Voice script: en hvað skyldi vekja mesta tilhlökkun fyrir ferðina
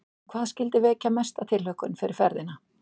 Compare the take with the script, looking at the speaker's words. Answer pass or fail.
pass